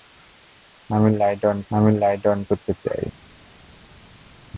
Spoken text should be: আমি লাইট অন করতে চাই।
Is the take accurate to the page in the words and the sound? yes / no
no